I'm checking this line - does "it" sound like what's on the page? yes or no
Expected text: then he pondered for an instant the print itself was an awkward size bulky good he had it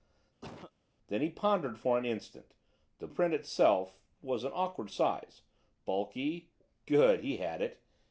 yes